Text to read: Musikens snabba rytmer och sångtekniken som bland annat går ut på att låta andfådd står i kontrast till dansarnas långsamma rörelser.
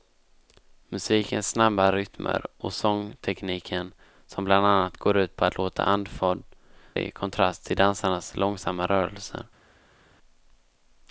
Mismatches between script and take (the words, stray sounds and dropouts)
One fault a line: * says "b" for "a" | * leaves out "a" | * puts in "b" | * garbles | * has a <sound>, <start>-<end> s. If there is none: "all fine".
* leaves out "står"